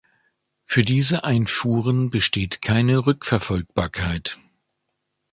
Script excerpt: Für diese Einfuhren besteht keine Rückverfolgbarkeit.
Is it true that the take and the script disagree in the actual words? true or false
false